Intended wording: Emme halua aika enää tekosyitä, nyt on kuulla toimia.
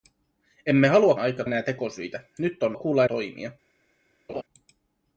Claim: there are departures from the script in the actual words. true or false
false